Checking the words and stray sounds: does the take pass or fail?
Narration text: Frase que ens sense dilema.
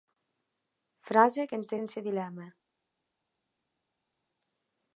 pass